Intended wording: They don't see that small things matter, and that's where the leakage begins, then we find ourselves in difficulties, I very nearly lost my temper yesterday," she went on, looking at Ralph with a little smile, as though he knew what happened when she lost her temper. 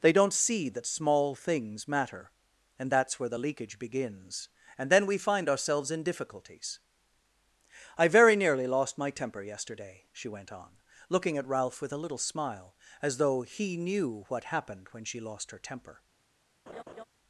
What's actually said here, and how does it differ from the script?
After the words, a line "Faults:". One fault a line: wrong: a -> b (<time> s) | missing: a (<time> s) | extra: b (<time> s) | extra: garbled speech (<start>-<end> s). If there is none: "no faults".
They don't see that small things matter, and that's where the leakage begins, and then we find ourselves in difficulties, I very nearly lost my temper yesterday," she went on, looking at Ralph with a little smile, as though he knew what happened when she lost her temper.
Faults:
extra: and (4.8 s)